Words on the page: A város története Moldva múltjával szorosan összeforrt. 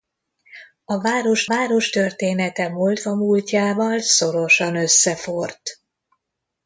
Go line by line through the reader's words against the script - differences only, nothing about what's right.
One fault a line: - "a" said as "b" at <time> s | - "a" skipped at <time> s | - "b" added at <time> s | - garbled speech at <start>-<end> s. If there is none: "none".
- "város" added at 1.5 s